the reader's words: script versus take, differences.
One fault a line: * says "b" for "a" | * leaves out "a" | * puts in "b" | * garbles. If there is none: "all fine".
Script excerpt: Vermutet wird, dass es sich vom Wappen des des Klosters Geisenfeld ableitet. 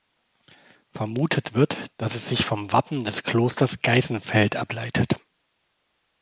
* leaves out "des"